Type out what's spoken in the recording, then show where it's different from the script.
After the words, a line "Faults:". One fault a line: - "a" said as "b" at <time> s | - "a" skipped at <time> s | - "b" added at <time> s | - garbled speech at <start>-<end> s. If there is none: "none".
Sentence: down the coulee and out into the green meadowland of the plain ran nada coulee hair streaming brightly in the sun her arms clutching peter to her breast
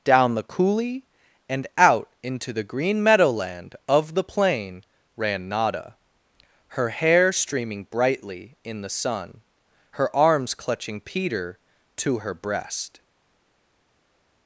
down the coulee and out into the green meadowland of the plain ran nada her hair streaming brightly in the sun her arms clutching peter to her breast
Faults:
- "coulee" said as "her" at 6.7 s